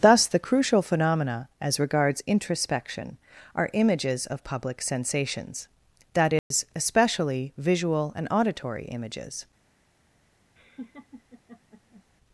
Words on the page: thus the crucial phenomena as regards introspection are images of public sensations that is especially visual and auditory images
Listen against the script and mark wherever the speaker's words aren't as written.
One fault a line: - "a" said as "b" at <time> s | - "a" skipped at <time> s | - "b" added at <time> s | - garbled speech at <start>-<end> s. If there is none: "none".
none